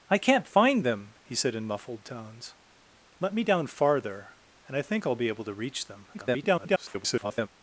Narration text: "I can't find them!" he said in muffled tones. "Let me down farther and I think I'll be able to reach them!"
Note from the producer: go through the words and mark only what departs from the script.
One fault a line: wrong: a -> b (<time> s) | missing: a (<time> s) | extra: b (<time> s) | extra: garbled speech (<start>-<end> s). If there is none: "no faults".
extra: garbled speech (6.1-7.5 s)